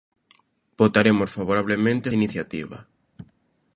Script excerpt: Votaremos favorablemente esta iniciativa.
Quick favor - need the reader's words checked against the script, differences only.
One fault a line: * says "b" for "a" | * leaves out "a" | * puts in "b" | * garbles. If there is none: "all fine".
* leaves out "esta"